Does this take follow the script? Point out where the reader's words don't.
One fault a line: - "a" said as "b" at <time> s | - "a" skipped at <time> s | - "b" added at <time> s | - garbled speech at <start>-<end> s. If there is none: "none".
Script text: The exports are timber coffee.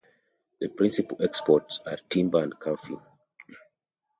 - "principal" added at 0.7 s
- "and" added at 2.4 s